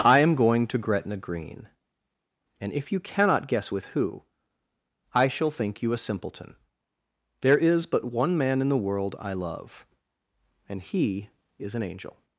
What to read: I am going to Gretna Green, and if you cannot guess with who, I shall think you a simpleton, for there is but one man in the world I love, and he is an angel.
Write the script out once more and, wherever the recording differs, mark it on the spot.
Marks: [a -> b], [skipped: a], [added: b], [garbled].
I am going to Gretna Green, and if you cannot guess with who, I shall think you a simpleton, [skipped: for] there is but one man in the world I love, and he is an angel.